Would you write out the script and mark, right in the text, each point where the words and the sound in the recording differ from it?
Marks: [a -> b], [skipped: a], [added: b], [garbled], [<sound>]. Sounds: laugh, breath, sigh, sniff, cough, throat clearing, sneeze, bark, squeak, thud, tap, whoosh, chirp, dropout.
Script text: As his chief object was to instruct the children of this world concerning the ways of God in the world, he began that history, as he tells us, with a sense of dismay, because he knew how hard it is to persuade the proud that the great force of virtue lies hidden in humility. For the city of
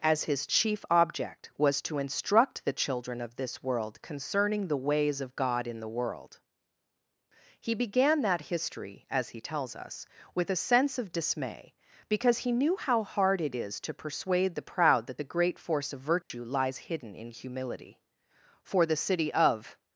As his chief object was to instruct the children of this world concerning the ways of God in the world, he began that history, as he tells us, with a sense of dismay, because he knew how hard it is to persuade the proud that the great force of virtue [dropout] lies hidden in humility. For the city of